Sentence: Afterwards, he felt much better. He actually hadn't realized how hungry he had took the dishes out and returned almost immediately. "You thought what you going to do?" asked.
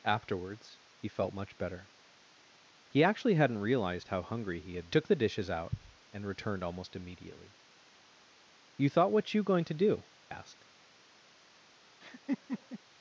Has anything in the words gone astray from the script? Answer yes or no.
no